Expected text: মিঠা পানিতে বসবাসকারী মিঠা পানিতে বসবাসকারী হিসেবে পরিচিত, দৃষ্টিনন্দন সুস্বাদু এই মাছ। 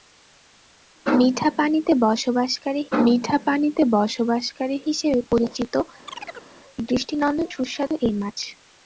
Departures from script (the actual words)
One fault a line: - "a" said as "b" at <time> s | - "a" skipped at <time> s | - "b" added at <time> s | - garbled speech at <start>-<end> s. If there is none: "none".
none